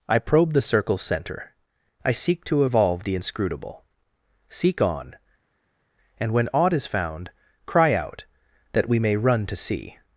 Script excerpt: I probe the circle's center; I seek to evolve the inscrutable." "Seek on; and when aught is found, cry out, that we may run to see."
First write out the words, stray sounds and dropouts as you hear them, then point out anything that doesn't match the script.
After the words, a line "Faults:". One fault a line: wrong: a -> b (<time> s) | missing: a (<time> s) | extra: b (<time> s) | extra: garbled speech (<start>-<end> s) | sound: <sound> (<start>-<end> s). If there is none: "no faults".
I probe the circle's center; I seek to evolve the inscrutable." "Seek on; and when aught is found, cry out, that we may run to see."
Faults:
no faults